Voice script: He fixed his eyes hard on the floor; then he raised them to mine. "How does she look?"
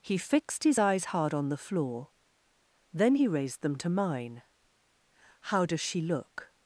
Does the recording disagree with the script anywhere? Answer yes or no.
no